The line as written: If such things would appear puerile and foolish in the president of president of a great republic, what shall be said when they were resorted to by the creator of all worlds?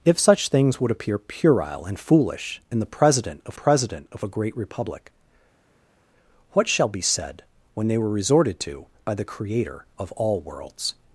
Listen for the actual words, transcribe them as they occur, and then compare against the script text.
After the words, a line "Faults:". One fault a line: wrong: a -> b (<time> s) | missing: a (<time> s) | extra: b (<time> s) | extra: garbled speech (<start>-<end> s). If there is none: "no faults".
If such things would appear puerile and foolish in the president of president of a great republic, what shall be said when they were resorted to by the creator of all worlds?
Faults:
no faults